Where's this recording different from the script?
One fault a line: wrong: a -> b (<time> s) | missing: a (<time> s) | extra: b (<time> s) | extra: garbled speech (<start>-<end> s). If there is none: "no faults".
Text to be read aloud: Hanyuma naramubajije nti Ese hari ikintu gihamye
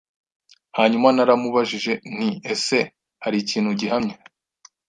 no faults